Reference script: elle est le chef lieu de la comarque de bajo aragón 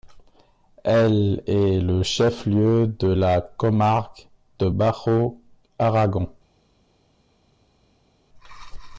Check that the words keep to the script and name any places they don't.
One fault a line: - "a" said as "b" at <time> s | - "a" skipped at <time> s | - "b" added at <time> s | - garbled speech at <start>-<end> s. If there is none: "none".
none